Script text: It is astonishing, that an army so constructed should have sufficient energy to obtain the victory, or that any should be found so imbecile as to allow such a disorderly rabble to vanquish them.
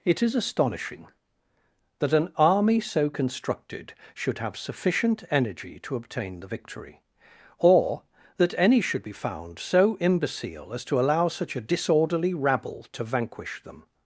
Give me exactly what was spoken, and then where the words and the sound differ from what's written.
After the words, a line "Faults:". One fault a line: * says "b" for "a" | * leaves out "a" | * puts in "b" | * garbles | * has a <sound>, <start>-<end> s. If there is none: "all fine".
It is astonishing, that an army so constructed should have sufficient energy to obtain the victory, or that any should be found so imbecile as to allow such a disorderly rabble to vanquish them.
Faults:
all fine